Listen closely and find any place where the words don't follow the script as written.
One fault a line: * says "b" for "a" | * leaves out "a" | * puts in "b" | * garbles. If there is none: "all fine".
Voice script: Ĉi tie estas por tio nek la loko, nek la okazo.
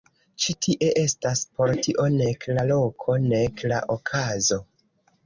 all fine